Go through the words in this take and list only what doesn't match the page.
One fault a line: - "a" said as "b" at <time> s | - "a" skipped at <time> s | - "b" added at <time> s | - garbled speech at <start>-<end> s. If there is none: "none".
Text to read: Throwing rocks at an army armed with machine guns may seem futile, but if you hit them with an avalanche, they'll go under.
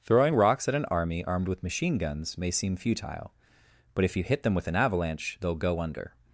none